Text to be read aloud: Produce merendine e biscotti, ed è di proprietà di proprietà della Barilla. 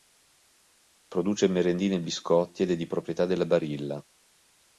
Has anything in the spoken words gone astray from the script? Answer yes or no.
yes